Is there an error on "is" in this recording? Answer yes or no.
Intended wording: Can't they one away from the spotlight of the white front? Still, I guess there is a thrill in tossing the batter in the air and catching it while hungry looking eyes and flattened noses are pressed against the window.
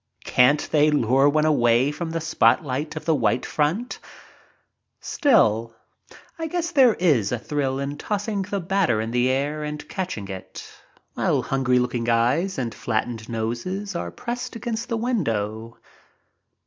no